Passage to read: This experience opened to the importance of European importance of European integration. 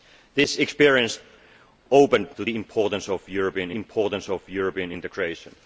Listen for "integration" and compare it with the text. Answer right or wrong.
right